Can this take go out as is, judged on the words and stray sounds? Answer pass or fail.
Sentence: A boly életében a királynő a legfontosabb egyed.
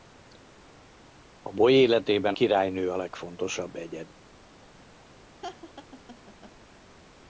fail